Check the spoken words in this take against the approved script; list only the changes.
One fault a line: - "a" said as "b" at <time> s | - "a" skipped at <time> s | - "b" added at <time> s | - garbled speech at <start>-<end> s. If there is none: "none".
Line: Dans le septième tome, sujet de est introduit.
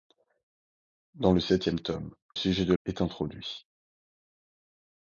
none